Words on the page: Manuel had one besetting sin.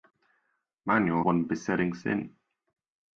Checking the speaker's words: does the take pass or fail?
fail